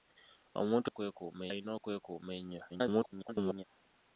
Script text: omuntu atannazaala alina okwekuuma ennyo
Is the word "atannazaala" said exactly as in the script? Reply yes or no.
no